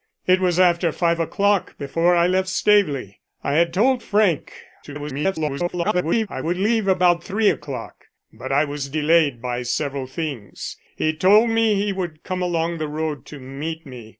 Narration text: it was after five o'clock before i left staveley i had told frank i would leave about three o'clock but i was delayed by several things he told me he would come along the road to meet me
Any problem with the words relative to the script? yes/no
yes